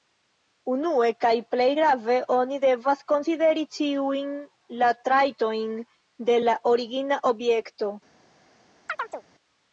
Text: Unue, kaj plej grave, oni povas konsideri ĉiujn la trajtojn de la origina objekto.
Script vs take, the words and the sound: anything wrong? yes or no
yes